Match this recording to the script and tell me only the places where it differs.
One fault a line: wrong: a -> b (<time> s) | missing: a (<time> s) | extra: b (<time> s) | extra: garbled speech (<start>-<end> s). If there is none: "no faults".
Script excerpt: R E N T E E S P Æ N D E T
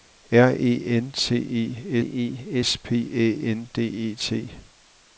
no faults